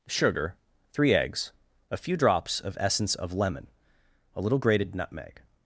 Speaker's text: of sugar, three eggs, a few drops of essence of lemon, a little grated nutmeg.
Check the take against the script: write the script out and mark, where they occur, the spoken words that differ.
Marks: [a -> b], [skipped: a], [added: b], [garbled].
[skipped: of] sugar, three eggs, a few drops of essence of lemon, a little grated nutmeg.